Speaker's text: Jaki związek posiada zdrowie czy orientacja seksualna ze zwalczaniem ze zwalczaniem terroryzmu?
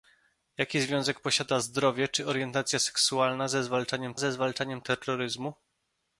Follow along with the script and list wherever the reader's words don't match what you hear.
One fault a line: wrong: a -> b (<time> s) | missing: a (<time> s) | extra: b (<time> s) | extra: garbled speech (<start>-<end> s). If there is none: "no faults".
no faults